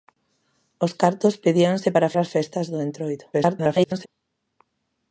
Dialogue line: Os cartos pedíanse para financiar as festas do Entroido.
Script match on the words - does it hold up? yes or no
no